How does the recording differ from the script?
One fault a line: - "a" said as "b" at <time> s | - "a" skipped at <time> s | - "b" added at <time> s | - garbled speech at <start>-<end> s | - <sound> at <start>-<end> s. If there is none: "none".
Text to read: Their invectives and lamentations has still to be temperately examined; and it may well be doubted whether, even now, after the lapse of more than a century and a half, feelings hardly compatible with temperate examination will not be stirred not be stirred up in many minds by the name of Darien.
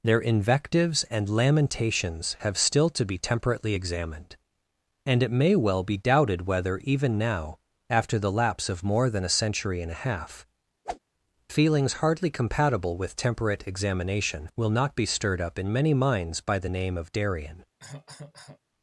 - "has" said as "have" at 2.4 s
- whoosh at 10.8-11.0 s
- "not be stirred" skipped at 15.4 s
- cough at 17.8-18.6 s